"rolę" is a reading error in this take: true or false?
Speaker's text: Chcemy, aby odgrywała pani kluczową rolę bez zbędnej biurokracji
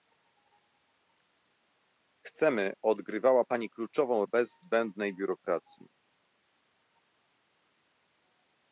true